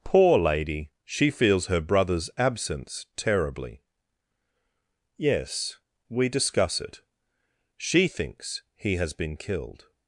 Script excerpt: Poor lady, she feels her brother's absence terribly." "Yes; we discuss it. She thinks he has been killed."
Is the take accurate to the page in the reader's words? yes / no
yes